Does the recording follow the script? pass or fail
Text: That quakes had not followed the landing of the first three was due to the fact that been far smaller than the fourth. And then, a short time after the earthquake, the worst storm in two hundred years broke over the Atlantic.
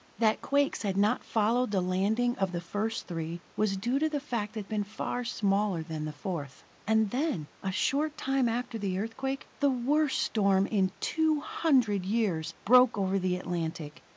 pass